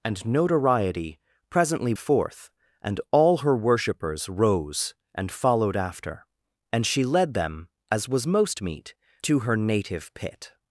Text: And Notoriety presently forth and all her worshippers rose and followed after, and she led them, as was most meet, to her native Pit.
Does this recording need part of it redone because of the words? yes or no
no